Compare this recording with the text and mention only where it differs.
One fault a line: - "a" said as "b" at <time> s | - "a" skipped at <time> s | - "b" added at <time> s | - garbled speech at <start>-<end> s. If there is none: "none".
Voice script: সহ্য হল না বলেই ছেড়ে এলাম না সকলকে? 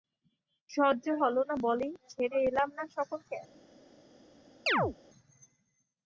none